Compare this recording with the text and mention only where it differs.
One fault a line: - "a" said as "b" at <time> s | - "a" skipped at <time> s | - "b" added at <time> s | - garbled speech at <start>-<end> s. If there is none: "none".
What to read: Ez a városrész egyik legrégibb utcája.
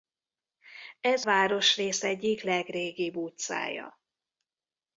- "a" skipped at 1.2 s